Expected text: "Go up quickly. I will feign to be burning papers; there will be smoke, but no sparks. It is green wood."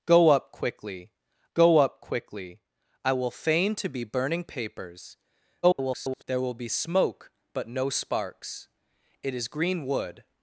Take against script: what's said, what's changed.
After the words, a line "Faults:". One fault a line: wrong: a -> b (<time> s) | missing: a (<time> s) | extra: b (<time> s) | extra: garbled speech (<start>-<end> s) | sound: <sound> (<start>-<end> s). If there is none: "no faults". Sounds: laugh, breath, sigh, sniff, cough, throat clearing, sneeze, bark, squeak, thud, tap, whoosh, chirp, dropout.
"Go up quickly go up quickly. I will feign to be burning papers; [garbled] there will be smoke, but no sparks. It is green wood."
Faults:
extra: go up quickly (1.5 s)
extra: garbled speech (5.6-6.2 s)